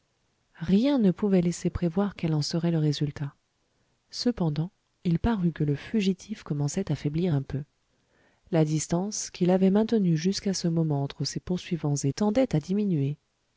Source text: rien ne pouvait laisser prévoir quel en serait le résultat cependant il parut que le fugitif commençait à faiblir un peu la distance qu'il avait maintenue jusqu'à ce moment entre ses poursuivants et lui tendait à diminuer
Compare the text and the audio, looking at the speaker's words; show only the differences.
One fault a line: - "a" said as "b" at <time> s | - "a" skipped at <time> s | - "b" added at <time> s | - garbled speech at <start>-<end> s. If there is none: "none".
- "lui" skipped at 12.1 s